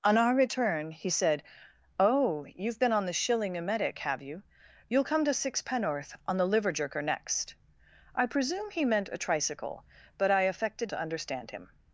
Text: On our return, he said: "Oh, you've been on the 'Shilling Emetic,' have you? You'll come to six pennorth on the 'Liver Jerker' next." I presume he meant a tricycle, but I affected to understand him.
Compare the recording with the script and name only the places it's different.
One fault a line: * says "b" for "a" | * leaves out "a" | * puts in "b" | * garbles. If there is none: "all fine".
all fine